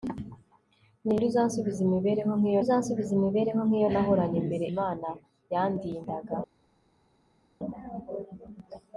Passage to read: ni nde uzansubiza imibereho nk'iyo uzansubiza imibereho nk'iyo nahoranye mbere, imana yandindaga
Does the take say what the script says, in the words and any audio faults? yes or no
yes